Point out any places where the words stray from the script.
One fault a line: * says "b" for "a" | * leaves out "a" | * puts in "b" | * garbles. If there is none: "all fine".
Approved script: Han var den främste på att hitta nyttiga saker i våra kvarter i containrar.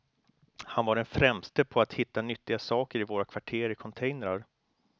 all fine